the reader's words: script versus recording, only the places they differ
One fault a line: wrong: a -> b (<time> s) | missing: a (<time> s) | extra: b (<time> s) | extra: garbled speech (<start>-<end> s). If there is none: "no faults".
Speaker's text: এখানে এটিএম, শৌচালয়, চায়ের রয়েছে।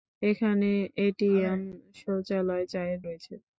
no faults